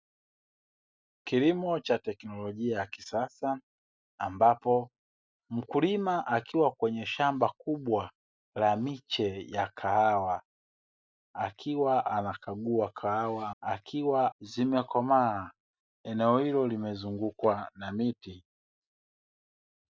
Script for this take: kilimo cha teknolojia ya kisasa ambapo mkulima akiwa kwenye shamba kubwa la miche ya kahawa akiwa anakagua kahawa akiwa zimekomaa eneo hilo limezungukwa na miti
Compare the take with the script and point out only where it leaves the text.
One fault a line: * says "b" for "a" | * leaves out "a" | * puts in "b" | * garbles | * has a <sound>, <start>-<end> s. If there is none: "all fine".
all fine